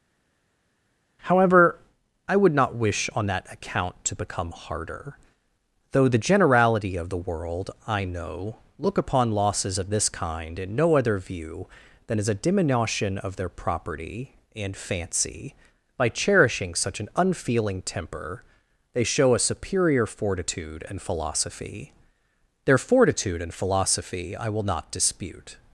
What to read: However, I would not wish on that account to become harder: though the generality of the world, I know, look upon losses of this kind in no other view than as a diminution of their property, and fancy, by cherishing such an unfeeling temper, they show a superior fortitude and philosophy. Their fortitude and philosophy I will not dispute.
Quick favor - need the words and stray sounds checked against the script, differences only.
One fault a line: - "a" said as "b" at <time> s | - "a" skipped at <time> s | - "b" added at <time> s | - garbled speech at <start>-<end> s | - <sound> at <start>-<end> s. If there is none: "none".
none